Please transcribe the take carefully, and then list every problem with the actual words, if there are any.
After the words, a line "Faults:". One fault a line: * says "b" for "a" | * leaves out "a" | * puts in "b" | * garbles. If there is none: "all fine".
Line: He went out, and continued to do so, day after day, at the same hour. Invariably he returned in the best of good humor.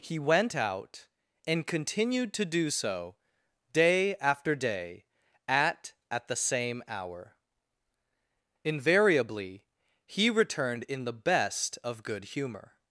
He went out, and continued to do so, day after day, at at the same hour. Invariably he returned in the best of good humor.
Faults:
* puts in "at"